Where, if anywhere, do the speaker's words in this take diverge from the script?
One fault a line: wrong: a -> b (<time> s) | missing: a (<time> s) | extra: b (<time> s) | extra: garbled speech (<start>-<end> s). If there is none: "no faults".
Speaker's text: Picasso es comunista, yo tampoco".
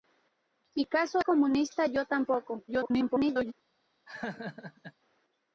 missing: es (1.2 s)
extra: garbled speech (2.7-3.5 s)